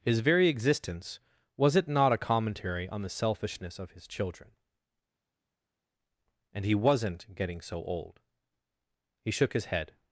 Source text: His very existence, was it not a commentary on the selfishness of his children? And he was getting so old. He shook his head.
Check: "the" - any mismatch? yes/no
no